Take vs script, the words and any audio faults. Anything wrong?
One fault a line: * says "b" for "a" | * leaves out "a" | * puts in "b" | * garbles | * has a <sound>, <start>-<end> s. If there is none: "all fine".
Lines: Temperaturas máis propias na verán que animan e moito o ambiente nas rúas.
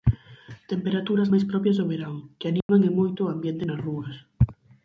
* says "do" for "na"
* has a dropout, 2.6-2.7 s